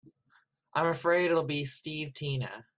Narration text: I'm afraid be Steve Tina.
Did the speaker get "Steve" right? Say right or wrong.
right